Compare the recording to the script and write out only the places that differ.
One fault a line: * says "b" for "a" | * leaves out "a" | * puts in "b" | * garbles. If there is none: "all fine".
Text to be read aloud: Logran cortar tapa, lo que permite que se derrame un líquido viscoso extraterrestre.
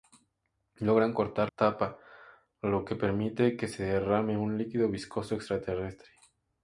all fine